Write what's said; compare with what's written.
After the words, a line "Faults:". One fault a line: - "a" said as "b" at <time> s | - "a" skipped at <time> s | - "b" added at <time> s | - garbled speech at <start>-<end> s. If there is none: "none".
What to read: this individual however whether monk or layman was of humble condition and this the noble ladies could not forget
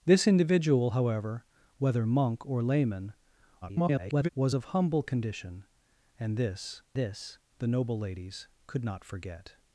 this individual however whether monk or layman [garbled] was of humble condition and this this the noble ladies could not forget
Faults:
- garbled speech at 3.6-4.3 s
- "this" added at 6.9 s